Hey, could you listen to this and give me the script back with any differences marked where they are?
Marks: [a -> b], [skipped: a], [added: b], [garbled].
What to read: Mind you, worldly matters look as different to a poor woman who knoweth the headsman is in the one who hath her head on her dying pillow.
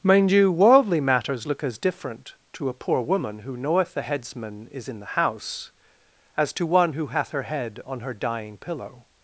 Mind you, worldly matters look as different to a poor woman who knoweth the headsman is in the [added: house as to] one who hath her head on her dying pillow.